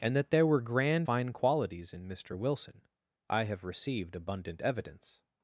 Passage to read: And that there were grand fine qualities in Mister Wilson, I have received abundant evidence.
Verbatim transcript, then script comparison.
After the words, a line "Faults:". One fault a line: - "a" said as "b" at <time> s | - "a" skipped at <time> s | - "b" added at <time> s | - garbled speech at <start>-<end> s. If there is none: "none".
And that there were grand fine qualities in Mister Wilson, I have received abundant evidence.
Faults:
none